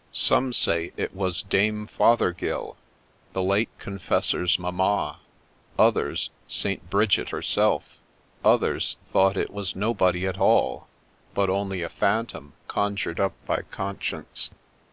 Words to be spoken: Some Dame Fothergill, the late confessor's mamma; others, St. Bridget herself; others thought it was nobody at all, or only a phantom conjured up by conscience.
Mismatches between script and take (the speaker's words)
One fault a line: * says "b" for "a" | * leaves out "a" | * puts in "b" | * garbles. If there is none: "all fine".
* puts in "say it was"
* says "but" for "or"